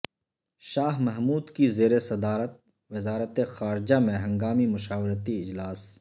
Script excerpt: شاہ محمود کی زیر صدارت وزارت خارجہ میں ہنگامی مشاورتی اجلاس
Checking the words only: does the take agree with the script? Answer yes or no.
yes